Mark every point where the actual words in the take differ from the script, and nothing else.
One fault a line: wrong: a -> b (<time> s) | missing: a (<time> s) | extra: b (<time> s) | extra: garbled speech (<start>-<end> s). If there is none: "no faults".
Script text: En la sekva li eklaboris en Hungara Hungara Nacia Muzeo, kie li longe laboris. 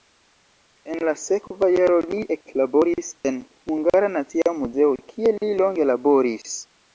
extra: jaro (1.7 s)
missing: Hungara (4.1 s)